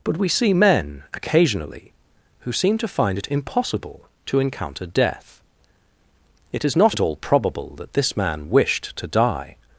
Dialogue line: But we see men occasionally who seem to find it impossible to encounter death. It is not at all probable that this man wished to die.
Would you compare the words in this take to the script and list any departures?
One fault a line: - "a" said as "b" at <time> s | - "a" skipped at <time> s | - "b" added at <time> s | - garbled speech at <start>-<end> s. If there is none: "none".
none